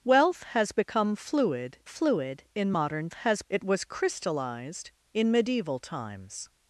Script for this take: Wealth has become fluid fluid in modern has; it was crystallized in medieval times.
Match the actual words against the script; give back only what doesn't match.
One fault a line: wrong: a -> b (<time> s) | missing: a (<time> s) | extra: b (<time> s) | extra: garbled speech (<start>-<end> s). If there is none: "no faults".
no faults